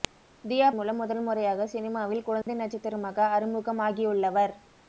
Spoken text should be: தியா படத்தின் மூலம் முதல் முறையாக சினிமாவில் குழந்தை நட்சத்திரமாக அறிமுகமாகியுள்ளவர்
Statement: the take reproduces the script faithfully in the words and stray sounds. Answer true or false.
false